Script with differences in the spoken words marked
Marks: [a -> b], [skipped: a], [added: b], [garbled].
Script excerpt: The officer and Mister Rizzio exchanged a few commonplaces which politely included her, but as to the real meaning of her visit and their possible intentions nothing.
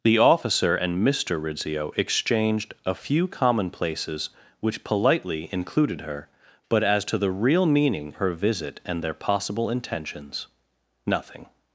The officer and Mister Rizzio exchanged a few commonplaces which politely included her, but as to the real meaning [skipped: of] her visit and their possible intentions nothing.